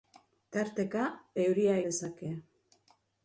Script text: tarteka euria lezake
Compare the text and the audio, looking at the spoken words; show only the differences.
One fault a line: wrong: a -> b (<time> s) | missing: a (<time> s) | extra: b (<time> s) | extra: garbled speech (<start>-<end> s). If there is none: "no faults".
no faults